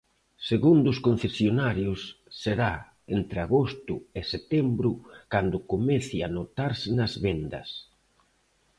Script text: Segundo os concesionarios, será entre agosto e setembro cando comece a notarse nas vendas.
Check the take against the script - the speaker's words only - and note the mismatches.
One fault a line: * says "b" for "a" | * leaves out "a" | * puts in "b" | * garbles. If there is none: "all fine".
all fine